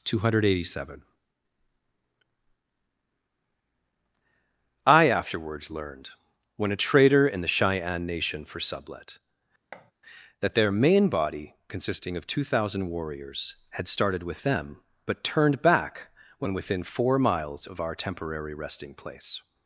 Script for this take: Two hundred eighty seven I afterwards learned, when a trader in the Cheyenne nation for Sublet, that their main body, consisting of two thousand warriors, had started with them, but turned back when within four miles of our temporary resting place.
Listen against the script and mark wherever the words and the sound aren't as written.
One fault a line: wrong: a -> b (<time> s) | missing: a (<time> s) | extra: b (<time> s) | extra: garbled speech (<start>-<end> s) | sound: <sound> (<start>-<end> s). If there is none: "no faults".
sound: thud (9.7-9.9 s)